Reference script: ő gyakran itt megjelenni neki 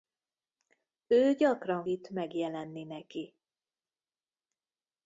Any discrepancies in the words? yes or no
no